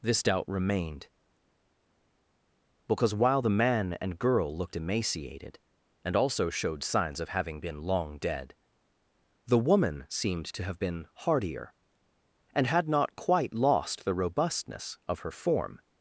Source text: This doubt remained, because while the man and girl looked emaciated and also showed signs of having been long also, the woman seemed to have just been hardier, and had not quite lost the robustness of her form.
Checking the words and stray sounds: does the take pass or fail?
fail